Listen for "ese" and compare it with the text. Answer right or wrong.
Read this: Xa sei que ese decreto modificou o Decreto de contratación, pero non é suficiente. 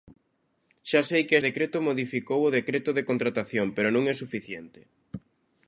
wrong